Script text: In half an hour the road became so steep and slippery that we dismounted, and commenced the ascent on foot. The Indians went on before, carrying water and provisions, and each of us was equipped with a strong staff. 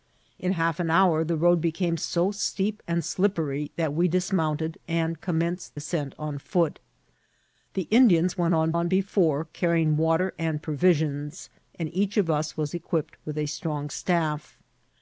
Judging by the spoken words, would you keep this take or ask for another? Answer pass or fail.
fail